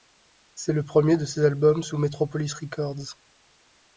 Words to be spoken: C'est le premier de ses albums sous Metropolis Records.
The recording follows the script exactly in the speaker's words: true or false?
true